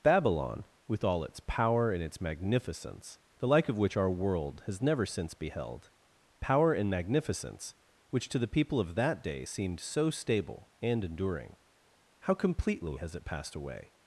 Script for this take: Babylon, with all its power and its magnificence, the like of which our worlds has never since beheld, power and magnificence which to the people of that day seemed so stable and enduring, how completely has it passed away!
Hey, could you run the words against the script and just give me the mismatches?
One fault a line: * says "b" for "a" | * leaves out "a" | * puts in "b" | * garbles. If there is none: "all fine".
* says "world" for "worlds"